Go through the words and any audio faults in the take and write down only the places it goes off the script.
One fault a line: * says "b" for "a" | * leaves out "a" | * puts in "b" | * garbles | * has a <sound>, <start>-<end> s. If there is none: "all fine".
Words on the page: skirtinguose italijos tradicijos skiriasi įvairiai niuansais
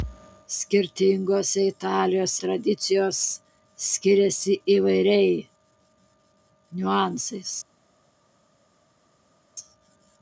all fine